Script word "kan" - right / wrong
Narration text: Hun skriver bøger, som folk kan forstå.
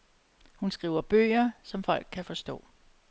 right